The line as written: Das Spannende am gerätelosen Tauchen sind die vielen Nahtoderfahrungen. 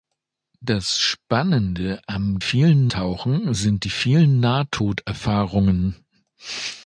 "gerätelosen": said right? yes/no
no